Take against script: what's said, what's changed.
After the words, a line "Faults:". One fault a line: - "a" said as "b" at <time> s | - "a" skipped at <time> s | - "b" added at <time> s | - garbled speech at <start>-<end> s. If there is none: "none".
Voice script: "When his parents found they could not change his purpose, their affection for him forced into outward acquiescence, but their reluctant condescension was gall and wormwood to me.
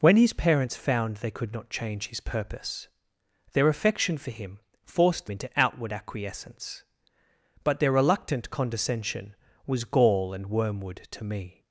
"When his parents found they could not change his purpose, their affection for him forced into outward acquiescence, but their reluctant condescension was gall and wormwood to me.
Faults:
none